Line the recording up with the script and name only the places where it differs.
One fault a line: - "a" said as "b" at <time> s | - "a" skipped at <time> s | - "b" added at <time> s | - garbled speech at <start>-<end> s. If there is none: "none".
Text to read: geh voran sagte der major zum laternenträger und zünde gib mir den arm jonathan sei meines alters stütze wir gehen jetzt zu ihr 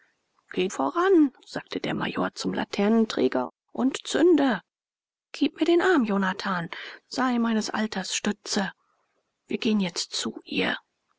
none